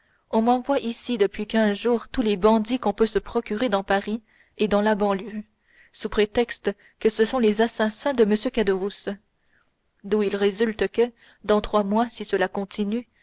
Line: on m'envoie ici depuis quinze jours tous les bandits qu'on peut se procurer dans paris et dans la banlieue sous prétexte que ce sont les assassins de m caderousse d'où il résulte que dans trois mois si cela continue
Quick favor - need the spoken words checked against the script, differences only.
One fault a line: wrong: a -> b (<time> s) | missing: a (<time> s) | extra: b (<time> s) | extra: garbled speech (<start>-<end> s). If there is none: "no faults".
no faults